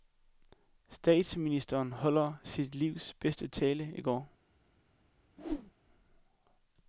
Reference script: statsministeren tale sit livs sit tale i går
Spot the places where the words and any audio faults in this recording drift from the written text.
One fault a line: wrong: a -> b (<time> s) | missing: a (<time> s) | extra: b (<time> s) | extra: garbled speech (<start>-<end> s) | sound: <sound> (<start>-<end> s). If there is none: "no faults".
wrong: tale -> holdt (1.9 s)
wrong: sit -> bedste (3.1 s)
sound: whoosh (5.4-5.7 s)